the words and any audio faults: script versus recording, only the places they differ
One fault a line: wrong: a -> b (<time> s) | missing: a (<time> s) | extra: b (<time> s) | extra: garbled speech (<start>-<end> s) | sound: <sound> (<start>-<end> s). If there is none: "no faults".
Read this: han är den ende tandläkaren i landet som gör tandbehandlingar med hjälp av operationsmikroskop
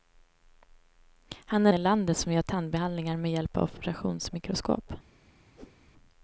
missing: den ende tandläkaren (1.7 s)
sound: whoosh (5.6-5.8 s)